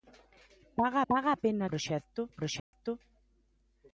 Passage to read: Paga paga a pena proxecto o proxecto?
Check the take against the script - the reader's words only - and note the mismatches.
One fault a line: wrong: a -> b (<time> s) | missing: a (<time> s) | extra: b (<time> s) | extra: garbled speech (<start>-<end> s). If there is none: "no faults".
no faults